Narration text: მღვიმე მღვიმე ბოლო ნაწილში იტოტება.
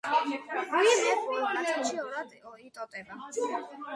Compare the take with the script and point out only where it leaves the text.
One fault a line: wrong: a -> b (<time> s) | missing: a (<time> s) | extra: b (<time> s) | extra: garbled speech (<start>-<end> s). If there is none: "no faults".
missing: მღვიმე (1.1 s)
extra: ორად (2.0 s)